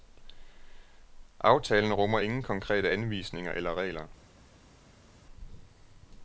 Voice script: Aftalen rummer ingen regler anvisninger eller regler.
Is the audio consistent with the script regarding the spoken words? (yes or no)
no